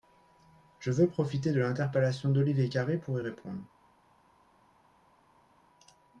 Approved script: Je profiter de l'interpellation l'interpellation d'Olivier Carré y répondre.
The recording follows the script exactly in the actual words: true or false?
false